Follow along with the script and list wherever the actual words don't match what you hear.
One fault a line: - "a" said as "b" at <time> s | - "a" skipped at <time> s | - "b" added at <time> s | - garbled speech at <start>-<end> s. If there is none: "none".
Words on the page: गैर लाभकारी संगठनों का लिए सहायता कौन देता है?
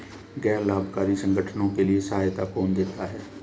- "का" said as "के" at 1.7 s